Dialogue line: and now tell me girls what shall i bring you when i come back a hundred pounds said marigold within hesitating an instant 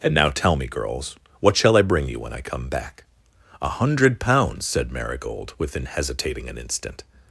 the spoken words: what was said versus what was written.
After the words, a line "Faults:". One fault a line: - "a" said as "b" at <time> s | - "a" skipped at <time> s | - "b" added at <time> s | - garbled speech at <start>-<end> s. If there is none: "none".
and now tell me girls what shall i bring you when i come back a hundred pounds said marigold within hesitating an instant
Faults:
none